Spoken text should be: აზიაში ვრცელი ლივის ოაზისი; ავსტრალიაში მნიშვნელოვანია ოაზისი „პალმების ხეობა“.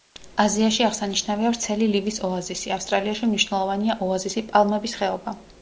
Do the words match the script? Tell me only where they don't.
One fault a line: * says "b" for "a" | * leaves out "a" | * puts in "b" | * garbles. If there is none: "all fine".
* puts in "აღსანიშნავია"